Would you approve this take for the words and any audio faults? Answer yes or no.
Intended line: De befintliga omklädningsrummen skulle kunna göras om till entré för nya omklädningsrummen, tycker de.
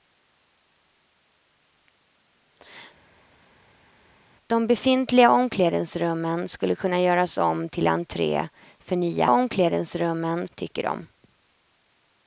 yes